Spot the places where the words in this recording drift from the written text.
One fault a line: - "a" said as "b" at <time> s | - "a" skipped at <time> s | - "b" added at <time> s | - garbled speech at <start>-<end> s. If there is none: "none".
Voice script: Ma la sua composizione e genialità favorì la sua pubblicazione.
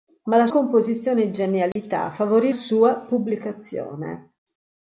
- "sua" skipped at 0.5 s
- "la" skipped at 2.5 s